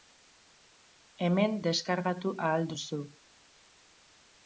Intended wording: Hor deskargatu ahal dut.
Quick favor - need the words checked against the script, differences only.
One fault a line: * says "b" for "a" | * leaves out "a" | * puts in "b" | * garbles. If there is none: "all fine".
* says "Hemen" for "Hor"
* says "duzu" for "dut"